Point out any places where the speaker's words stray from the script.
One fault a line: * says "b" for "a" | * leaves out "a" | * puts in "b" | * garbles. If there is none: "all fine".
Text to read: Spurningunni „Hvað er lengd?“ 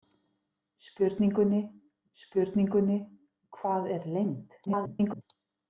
* puts in "spurningunni"
* garbles